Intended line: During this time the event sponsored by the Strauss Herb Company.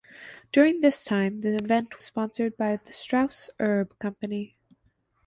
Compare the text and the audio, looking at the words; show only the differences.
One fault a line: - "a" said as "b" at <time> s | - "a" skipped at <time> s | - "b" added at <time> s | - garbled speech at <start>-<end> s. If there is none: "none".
none